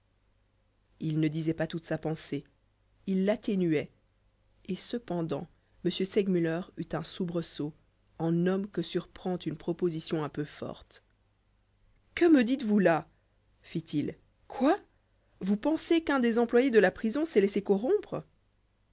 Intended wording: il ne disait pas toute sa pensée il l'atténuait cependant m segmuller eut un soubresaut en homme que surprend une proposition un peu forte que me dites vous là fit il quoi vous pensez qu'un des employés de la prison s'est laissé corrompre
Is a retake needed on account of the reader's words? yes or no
yes